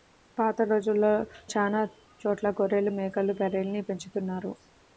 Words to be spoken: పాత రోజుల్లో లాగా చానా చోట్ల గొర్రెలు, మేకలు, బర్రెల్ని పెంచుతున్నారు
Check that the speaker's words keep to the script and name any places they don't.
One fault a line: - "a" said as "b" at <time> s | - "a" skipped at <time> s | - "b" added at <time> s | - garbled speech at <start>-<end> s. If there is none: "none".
- "లాగా" skipped at 1.1 s